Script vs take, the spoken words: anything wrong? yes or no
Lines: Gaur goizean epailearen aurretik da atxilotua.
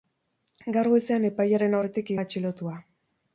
no